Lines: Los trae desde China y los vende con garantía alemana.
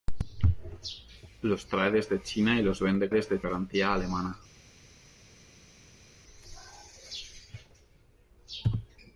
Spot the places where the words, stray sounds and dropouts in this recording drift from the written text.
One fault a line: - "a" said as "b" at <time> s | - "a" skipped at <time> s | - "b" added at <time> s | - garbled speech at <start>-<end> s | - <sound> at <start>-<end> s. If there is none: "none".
- "con" said as "desde" at 3.1 s